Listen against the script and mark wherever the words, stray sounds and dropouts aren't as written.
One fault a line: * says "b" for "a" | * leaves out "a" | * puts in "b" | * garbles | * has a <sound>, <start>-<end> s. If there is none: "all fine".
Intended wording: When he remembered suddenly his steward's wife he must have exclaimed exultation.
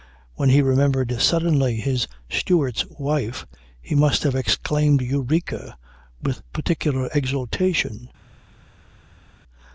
* puts in "eureka with particular"